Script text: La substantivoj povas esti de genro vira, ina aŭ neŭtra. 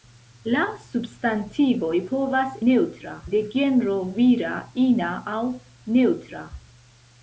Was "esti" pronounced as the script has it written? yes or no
no